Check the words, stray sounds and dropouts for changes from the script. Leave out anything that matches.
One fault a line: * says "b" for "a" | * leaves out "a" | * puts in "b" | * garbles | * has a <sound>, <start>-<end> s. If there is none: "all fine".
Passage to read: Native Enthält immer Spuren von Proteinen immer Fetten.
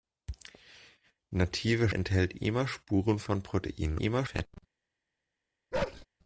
* has a bark, 5.7-6.1 s